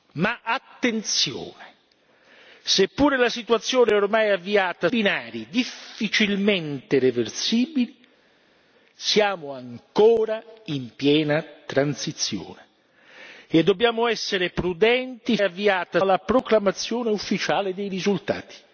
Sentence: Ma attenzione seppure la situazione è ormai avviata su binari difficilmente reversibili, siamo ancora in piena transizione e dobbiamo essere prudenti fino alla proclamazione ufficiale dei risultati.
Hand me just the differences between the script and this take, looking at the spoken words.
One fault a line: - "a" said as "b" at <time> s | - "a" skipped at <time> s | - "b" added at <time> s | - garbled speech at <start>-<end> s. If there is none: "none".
- "su" skipped at 4.9 s
- "fino" said as "avviata" at 15.4 s